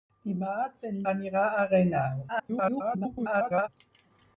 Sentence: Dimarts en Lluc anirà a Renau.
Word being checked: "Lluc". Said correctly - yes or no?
no